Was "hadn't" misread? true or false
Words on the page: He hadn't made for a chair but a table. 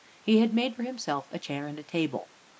true